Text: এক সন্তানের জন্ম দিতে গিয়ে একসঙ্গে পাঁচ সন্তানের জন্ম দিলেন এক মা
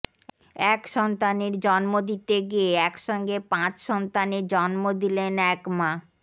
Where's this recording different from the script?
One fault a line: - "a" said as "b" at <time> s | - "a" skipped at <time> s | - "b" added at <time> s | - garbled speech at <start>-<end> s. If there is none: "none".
none